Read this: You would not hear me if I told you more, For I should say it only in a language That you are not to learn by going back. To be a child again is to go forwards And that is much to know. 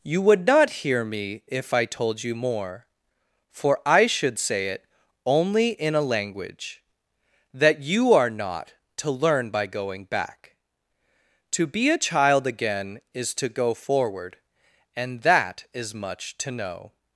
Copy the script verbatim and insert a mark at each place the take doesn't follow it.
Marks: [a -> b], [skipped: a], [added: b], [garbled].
You would not hear me if I told you more, For I should say it only in a language That you are not to learn by going back. To be a child again is to go [forwards -> forward] And that is much to know.